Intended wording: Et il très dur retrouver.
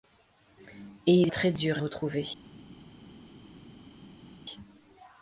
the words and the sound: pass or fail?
pass